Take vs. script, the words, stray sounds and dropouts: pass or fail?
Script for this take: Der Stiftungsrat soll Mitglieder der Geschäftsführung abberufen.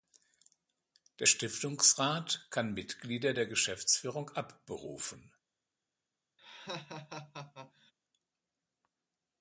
fail